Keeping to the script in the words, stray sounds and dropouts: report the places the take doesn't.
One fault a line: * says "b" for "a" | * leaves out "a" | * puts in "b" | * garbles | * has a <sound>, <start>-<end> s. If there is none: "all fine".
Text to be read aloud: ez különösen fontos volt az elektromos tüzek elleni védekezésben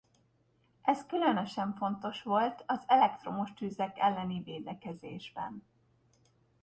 all fine